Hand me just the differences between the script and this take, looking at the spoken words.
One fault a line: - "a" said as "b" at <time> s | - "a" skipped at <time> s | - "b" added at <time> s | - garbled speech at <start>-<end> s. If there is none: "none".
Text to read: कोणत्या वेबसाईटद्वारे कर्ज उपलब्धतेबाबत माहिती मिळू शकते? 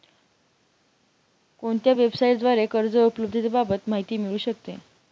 none